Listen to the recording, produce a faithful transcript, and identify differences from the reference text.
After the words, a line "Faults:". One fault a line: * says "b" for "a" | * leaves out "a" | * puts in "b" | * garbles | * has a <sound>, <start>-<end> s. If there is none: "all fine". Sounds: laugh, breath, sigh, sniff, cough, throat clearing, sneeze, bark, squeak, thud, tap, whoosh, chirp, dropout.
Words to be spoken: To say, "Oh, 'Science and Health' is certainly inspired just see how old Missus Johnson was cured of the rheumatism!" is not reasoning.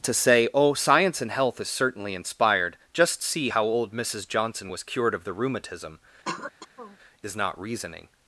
To say, "Oh, 'Science and Health' is certainly inspired just see how old Missus Johnson was cured of the rheumatism!" is not reasoning.
Faults:
* has a throat clearing, 6.3-7.0 s